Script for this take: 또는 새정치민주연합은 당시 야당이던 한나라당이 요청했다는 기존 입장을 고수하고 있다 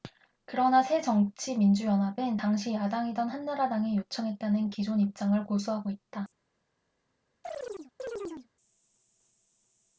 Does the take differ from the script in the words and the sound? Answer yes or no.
yes